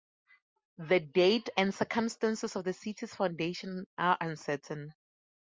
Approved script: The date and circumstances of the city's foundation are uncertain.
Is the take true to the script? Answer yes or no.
yes